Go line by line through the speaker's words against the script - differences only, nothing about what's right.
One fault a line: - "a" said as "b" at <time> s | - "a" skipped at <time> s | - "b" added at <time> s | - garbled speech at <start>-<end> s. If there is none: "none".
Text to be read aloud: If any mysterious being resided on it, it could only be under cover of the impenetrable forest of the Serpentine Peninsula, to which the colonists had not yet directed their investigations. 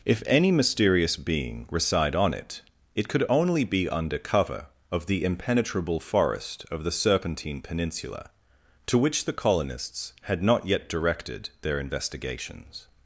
- "resided" said as "reside" at 1.7 s